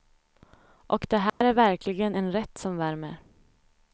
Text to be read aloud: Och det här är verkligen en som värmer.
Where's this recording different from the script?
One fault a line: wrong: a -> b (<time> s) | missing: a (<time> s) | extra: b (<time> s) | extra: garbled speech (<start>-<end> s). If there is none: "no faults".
extra: rätt (2.3 s)